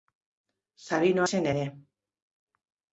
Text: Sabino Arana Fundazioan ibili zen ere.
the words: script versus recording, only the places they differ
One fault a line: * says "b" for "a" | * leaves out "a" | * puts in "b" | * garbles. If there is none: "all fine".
* leaves out "Arana Fundazioan ibili"